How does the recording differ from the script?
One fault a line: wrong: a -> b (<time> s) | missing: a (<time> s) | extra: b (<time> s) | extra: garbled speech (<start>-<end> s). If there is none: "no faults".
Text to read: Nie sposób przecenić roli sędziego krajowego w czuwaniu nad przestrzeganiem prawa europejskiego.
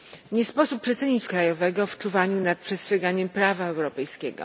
missing: roli sędziego (1.3 s)